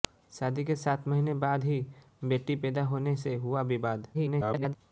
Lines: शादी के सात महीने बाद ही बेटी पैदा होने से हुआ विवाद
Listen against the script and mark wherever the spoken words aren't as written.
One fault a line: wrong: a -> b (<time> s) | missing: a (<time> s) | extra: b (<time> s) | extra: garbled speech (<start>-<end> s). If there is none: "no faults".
extra: garbled speech (4.1-4.8 s)